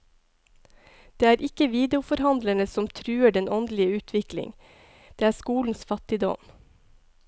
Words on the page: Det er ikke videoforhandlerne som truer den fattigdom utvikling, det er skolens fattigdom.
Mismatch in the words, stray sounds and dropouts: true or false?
true